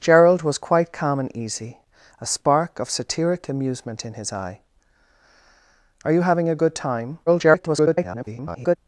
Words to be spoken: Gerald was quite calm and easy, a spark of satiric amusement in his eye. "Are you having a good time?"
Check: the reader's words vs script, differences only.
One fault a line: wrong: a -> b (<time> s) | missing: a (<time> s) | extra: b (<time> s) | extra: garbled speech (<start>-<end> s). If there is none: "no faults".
extra: garbled speech (7.3-8.8 s)